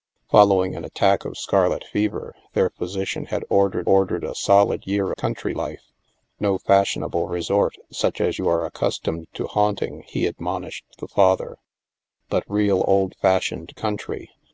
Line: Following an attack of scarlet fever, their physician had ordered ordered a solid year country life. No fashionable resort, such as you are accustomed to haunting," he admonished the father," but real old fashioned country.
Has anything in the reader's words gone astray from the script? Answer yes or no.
no